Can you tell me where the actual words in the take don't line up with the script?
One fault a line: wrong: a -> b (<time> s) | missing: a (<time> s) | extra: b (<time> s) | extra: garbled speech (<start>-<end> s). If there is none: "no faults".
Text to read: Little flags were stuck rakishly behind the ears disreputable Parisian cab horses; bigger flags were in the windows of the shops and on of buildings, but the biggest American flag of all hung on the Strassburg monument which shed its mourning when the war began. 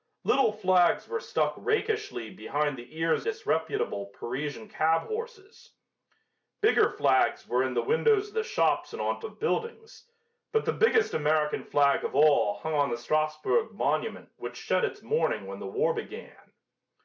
no faults